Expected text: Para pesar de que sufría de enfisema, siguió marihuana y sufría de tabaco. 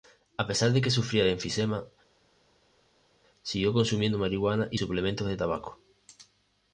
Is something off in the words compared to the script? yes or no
yes